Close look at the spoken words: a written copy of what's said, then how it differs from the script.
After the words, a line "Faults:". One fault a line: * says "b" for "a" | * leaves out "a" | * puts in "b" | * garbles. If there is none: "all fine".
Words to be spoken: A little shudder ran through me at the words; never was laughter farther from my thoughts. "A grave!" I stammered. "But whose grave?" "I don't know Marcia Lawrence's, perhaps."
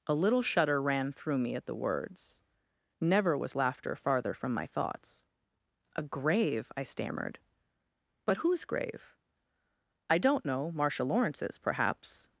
A little shudder ran through me at the words; never was laughter farther from my thoughts. "A grave!" I stammered. "But whose grave?" "I don't know Marcia Lawrence's, perhaps."
Faults:
all fine